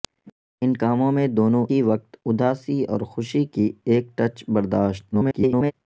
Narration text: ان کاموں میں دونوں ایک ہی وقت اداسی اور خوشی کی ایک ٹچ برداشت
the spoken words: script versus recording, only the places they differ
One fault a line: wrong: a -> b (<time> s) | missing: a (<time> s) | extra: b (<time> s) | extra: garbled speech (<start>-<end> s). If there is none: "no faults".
missing: ایک (1.6 s)
extra: garbled speech (5.1-5.7 s)